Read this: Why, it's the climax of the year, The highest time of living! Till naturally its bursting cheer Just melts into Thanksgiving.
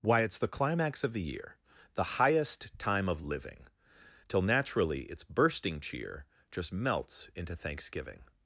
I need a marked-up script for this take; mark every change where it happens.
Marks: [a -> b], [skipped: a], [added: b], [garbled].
Why, it's the climax of the year, The highest time of living! Till naturally its bursting cheer Just melts into Thanksgiving.